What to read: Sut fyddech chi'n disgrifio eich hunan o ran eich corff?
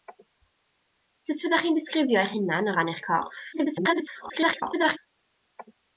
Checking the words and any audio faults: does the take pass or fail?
fail